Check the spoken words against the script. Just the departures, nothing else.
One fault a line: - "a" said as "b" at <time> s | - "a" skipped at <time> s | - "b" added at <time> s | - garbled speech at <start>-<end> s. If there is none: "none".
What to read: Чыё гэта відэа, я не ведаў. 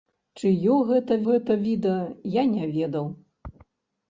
- "гэта" added at 1.3 s